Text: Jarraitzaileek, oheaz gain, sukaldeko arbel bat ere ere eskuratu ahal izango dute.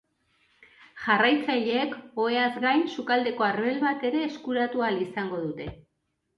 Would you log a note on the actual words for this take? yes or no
yes